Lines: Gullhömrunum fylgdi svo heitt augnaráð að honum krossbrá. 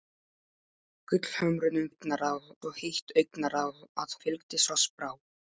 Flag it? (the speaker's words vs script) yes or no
yes